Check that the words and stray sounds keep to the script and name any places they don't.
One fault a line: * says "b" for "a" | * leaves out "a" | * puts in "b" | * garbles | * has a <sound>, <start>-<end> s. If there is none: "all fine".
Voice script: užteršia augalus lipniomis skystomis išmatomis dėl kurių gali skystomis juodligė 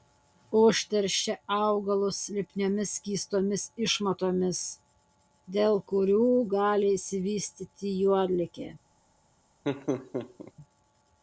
* says "išsivystyti" for "skystomis"
* has a laugh, 9.6-10.5 s